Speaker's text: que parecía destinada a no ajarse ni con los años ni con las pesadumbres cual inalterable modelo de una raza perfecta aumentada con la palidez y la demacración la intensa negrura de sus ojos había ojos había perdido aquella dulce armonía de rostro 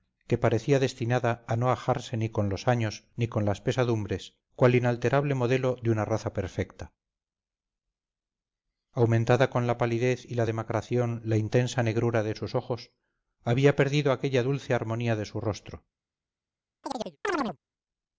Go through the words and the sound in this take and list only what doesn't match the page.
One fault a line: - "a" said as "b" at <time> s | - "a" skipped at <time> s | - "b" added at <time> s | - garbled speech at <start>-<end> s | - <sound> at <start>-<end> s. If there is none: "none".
- "ojos había" skipped at 13.8 s
- "su" added at 15.3 s
- chirp at 16.8-17.6 s